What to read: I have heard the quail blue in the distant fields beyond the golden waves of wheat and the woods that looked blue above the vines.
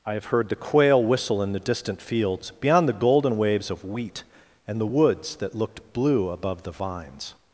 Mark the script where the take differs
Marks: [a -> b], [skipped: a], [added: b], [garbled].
I have heard the quail [blue -> whistle] in the distant fields beyond the golden waves of wheat and the woods that looked blue above the vines.